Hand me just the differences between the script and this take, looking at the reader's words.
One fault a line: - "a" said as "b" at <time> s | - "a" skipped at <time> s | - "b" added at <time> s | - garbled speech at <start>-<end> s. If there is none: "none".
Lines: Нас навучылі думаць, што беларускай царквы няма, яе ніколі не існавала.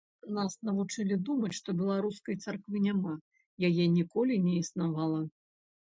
none